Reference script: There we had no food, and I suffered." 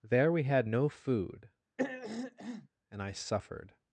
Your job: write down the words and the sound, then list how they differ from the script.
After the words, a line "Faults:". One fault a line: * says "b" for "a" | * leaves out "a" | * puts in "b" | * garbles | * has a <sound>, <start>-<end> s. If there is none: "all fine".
There we had no food, and I suffered."
Faults:
* has a throat clearing, 1.8-2.7 s